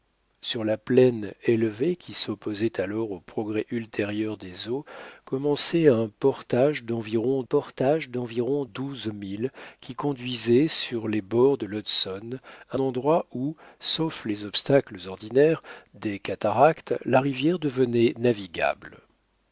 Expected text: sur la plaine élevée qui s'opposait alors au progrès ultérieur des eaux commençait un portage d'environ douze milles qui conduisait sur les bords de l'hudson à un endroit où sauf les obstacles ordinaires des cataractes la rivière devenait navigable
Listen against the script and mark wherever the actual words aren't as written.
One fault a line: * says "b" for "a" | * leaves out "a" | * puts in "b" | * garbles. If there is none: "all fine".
* puts in "portage d'environ"
* leaves out "un"